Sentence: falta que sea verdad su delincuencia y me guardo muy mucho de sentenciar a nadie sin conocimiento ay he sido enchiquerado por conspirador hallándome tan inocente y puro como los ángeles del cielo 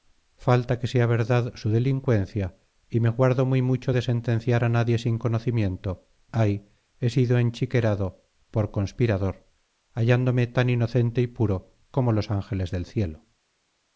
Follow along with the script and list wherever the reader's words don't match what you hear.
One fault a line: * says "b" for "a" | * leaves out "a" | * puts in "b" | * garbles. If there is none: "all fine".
all fine